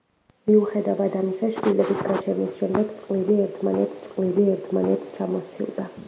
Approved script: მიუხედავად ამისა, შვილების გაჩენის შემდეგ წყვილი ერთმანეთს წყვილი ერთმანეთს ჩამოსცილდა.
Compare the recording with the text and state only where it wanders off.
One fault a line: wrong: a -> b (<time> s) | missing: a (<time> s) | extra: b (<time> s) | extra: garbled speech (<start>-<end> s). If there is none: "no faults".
no faults